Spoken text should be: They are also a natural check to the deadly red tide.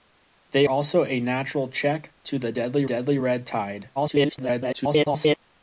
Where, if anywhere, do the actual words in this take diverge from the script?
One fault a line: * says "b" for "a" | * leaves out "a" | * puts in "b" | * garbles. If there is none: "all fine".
* leaves out "are"
* puts in "deadly"
* garbles